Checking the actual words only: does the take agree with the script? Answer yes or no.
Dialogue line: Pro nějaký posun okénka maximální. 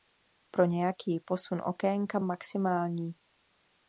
yes